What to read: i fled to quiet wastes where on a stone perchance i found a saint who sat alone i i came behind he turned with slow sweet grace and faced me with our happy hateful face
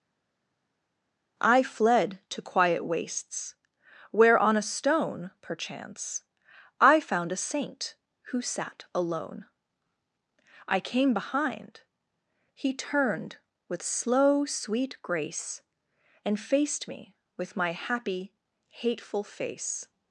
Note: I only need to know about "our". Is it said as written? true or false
false